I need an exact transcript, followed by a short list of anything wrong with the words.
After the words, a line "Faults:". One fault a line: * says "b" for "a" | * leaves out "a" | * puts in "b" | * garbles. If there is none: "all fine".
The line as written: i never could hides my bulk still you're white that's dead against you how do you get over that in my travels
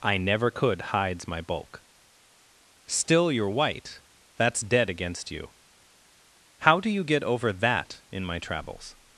i never could hides my bulk still you're white that's dead against you how do you get over that in my travels
Faults:
all fine